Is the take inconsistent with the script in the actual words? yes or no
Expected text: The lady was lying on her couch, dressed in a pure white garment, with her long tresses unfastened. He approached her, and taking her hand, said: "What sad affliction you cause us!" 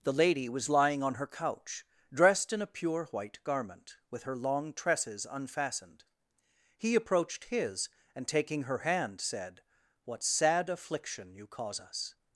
yes